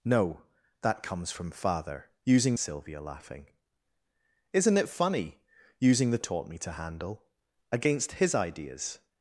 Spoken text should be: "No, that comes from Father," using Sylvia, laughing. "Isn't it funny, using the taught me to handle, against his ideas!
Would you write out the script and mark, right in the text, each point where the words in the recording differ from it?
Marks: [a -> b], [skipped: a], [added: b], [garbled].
"No, that comes from Father," using Sylvia, laughing. "Isn't it funny, using the taught me to handle, against his ideas!